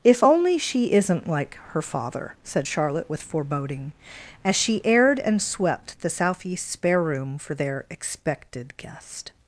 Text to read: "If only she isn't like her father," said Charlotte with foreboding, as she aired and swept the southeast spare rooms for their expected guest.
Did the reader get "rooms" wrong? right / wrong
wrong